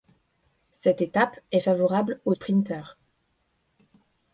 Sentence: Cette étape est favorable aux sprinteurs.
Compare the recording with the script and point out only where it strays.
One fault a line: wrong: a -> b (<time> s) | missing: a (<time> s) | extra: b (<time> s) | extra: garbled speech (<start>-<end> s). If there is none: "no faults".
no faults